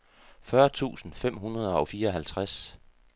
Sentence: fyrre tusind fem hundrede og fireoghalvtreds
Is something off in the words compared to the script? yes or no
no